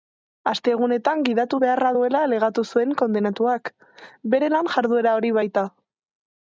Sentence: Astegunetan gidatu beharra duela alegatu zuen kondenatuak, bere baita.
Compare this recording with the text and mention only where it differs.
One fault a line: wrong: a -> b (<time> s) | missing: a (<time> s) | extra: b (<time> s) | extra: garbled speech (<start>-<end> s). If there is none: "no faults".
extra: lan jarduera hori (4.6 s)